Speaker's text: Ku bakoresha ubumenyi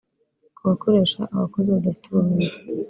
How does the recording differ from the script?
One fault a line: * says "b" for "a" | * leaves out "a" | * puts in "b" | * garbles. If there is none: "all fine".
* puts in "abakozi badafite"